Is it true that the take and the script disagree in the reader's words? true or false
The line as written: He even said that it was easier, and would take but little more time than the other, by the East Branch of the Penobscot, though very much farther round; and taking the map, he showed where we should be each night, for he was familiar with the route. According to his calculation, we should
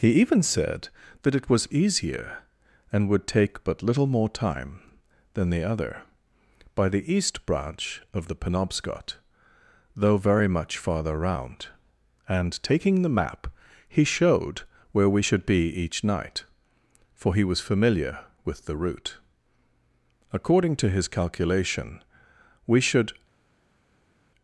false